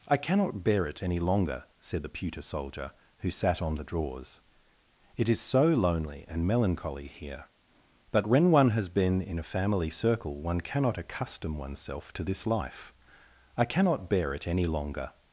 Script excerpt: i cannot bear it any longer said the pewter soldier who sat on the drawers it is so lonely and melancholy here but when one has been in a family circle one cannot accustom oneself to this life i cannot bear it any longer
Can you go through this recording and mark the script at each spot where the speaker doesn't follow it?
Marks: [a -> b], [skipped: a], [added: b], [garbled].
i cannot bear it any longer said the pewter soldier who sat on the drawers it is so lonely and melancholy here but when one has been in a family circle one cannot accustom oneself to this life i cannot bear it any longer